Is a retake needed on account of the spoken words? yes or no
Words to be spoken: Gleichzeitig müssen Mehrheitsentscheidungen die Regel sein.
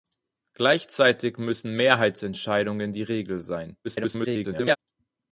yes